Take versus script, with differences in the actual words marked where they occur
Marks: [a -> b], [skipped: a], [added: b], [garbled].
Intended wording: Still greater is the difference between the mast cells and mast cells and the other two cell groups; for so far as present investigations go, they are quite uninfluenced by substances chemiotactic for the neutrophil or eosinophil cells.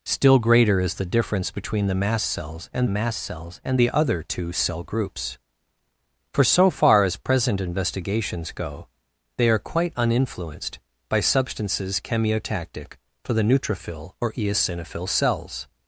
Still greater is the difference between the mast cells and mast cells and the other two cell groups; for so far as present investigations go, they are quite uninfluenced by substances chemiotactic for the neutrophil or eosinophil cells.